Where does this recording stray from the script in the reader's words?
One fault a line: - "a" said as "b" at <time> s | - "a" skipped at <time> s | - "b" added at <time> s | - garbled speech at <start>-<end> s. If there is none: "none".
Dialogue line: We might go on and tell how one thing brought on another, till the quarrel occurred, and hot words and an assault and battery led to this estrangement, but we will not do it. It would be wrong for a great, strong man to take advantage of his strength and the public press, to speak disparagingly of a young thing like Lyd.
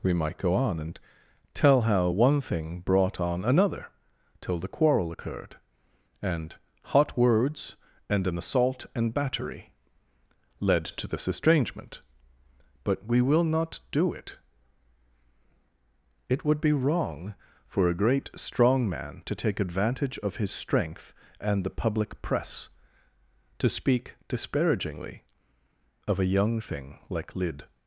none